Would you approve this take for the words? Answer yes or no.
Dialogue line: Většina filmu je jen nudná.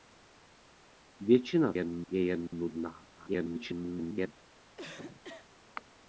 no